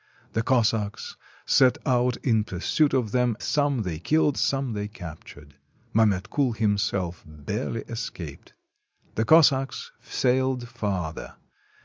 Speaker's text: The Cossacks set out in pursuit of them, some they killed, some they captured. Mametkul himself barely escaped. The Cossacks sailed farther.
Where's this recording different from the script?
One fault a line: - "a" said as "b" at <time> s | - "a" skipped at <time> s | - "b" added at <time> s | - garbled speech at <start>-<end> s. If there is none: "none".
none